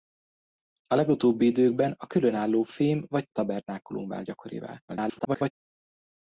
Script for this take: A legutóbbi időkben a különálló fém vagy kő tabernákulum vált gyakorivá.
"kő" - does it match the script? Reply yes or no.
no